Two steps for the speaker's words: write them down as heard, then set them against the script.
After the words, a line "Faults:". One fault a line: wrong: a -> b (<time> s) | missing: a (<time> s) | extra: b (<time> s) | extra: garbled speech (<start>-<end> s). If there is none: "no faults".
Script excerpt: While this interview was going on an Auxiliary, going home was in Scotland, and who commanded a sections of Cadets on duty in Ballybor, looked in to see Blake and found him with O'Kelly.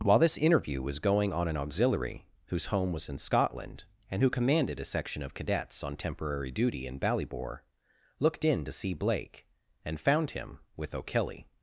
While this interview was going on an Auxiliary, whose home was in Scotland, and who commanded a section of Cadets on temporary duty in Ballybor, looked in to see Blake and found him with O'Kelly.
Faults:
wrong: going -> whose (2.5 s)
wrong: sections -> section (4.8 s)
extra: temporary (6.0 s)